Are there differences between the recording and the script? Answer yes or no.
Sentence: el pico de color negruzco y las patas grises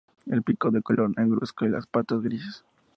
no